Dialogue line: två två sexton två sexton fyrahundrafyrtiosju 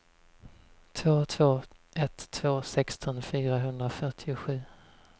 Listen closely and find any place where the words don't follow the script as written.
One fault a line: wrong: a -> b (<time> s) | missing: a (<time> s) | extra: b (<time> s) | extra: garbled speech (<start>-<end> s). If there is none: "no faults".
wrong: sexton -> ett (1.9 s)